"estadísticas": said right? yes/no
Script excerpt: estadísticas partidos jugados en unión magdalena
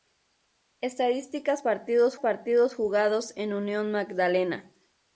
yes